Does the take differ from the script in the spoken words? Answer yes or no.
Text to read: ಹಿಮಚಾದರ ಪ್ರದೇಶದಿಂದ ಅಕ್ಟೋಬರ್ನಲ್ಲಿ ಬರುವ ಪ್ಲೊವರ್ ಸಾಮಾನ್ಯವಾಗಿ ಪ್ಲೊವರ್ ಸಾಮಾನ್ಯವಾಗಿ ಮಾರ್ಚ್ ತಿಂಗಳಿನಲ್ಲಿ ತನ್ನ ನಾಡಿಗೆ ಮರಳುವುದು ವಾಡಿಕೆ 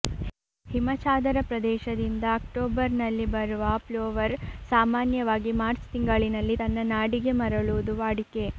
yes